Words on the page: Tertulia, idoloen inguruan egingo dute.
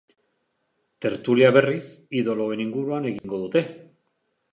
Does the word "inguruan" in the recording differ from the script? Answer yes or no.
no